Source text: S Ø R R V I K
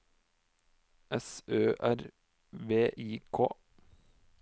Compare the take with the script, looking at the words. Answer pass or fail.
fail